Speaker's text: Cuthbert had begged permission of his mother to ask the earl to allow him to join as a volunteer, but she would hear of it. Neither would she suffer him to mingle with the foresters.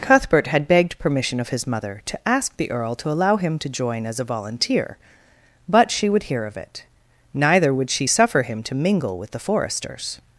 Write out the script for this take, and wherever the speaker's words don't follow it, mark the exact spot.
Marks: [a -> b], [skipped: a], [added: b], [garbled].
Cuthbert had begged permission of his mother to ask the earl to allow him to join as a volunteer, but she would hear of it. Neither would she suffer him to mingle with the foresters.